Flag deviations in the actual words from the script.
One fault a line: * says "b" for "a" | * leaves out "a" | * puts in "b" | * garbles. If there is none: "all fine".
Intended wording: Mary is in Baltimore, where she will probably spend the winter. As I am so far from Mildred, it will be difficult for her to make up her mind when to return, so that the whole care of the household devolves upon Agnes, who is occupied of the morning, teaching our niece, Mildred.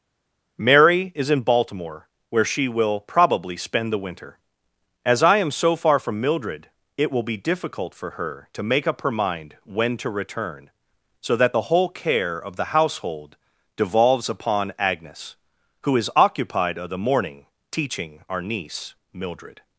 all fine